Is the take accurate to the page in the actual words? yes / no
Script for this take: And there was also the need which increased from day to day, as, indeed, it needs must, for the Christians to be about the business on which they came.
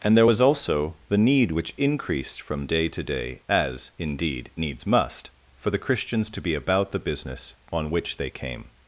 no